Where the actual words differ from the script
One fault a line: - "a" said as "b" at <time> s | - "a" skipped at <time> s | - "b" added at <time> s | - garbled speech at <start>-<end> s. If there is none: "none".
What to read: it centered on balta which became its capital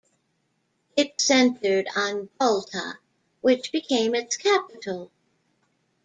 none